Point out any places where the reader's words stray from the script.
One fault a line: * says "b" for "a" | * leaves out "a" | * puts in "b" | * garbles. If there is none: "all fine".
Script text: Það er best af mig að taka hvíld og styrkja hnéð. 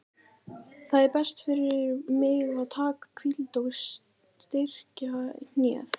* says "fyrir" for "af"